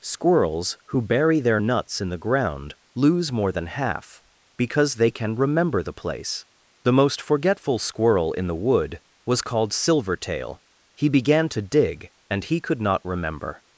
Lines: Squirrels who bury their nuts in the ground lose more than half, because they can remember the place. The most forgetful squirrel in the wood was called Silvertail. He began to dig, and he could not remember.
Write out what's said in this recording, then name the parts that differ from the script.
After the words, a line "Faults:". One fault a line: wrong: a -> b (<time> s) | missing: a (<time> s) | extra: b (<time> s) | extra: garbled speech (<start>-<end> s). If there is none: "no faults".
Squirrels who bury their nuts in the ground lose more than half, because they can remember the place. The most forgetful squirrel in the wood was called Silvertail. He began to dig, and he could not remember.
Faults:
no faults